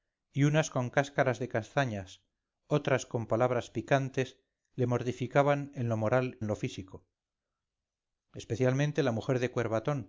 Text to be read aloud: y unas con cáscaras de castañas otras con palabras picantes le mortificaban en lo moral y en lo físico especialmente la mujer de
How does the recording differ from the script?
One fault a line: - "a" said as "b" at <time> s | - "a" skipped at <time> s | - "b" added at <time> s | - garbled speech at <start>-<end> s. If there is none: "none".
- "y" skipped at 6.4 s